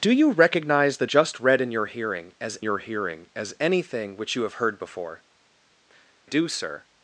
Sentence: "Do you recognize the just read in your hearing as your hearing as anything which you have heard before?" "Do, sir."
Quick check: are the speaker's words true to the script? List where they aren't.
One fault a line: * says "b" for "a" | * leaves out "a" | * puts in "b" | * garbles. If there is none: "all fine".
all fine